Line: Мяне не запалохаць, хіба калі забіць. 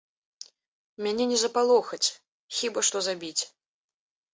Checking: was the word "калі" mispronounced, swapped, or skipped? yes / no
yes